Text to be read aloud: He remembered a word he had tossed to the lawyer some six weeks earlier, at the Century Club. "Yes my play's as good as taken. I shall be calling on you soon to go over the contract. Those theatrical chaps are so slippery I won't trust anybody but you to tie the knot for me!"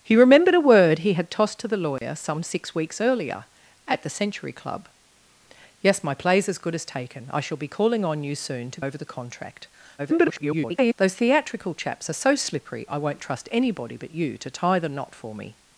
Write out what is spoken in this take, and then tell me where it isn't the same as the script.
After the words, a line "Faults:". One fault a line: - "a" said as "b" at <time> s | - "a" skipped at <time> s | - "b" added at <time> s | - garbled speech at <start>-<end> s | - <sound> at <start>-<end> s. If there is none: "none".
He remembered a word he had tossed to the lawyer some six weeks earlier, at the Century Club. "Yes my play's as good as taken. I shall be calling on you soon to over the contract. [garbled] Those theatrical chaps are so slippery I won't trust anybody but you to tie the knot for me!"
Faults:
- dropout at 2.0-2.0 s
- "go" skipped at 8.8 s
- garbled speech at 10.0-10.9 s